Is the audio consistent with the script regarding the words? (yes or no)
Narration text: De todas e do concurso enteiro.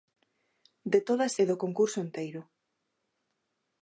yes